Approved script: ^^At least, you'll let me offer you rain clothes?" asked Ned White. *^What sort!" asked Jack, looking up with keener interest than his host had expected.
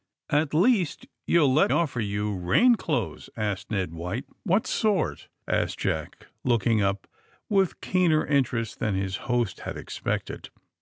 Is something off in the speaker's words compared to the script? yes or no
yes